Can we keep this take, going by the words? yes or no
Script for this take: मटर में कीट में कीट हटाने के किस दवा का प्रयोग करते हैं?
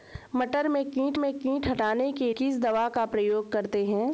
yes